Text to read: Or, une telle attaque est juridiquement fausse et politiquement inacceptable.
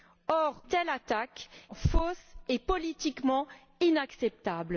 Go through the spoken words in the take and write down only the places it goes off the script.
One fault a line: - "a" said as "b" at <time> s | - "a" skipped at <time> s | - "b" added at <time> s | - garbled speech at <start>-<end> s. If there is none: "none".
- "une" skipped at 0.6 s
- "est juridiquement" skipped at 1.5 s